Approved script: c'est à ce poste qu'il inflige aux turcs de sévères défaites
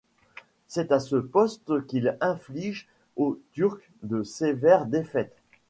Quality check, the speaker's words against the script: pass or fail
pass